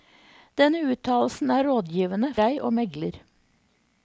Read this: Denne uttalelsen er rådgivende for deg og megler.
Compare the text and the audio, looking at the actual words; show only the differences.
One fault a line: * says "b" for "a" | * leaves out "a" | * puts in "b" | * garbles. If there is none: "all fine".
* leaves out "for"